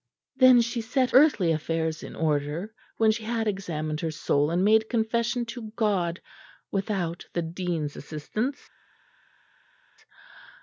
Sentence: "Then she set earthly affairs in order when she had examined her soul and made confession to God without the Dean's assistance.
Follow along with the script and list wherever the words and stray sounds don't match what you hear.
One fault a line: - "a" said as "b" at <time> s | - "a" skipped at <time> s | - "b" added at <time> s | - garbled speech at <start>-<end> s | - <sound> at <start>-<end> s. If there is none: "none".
none